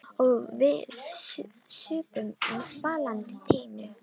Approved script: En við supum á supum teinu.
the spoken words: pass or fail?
fail